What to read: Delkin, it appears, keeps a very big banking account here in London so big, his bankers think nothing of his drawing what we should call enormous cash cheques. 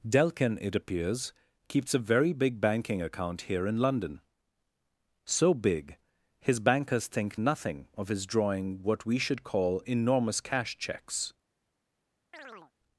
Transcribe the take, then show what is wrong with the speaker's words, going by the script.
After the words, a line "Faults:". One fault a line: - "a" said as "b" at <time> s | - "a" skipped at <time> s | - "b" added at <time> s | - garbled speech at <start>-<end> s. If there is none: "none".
Delkin, it appears, keeps a very big banking account here in London so big, his bankers think nothing of his drawing what we should call enormous cash cheques.
Faults:
none